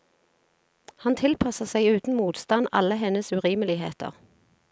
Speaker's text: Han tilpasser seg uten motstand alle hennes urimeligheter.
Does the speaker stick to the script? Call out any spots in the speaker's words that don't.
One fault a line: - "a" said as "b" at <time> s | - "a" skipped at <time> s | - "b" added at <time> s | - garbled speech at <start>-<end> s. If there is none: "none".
none